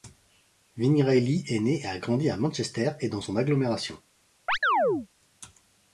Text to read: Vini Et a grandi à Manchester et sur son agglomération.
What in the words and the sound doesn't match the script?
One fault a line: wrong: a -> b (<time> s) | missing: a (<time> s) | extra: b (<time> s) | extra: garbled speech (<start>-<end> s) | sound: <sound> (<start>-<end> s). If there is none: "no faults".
extra: Reilly est né (1.0 s)
wrong: sur -> dans (3.1 s)
sound: chirp (4.5-5.1 s)